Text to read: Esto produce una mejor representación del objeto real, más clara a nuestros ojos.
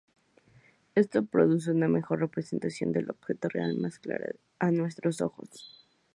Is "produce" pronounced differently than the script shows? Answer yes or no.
no